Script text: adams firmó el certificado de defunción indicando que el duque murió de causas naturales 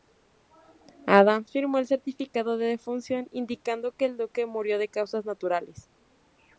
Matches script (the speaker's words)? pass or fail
pass